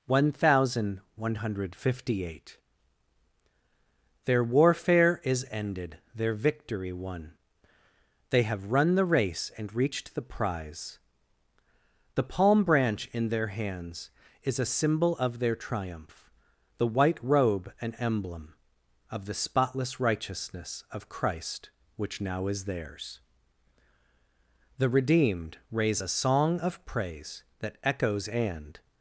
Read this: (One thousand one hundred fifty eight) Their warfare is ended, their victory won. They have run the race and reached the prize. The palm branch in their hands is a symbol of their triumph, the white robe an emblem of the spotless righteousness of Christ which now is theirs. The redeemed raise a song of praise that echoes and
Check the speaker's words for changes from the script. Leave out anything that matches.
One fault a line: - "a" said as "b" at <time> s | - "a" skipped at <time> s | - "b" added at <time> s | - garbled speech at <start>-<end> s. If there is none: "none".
none